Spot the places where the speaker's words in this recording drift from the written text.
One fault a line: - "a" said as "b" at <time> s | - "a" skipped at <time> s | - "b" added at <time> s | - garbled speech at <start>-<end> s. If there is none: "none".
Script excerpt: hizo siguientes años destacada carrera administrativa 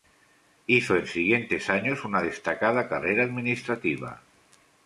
- "en" added at 0.9 s
- "una" added at 2.0 s